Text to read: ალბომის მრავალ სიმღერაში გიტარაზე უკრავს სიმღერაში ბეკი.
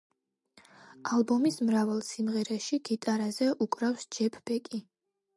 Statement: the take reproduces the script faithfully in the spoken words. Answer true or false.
false